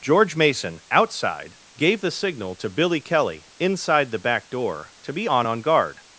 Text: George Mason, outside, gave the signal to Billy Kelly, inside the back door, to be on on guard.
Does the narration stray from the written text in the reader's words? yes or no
no